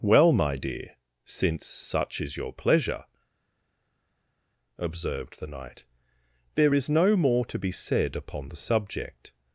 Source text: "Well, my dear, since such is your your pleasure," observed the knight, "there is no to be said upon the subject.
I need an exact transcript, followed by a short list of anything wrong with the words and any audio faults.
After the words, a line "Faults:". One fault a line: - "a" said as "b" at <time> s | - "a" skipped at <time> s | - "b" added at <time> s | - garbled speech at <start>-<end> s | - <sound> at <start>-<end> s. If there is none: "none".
"Well, my dear, since such is your pleasure," observed the knight, "there is no more to be said upon the subject.
Faults:
- "your" skipped at 2.5 s
- "more" added at 7.1 s